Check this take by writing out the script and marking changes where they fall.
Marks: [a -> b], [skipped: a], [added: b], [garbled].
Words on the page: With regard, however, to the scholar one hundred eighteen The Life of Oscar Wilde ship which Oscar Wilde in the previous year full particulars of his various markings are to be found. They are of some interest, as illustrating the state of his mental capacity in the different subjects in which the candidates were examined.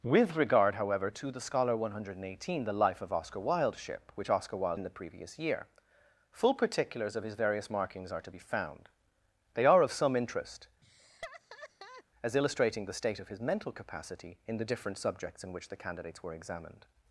With regard, however, to the scholar one hundred eighteen The Life of Oscar Wilde ship which Oscar Wilde in the previous year full particulars of his various markings are to be found. They are of some interest, as illustrating the state of his mental capacity in the different subjects in which the candidates were examined.